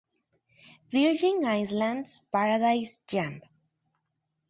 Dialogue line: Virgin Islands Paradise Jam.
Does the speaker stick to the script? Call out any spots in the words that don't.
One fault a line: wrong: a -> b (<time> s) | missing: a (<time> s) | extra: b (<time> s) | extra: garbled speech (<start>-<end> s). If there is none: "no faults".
no faults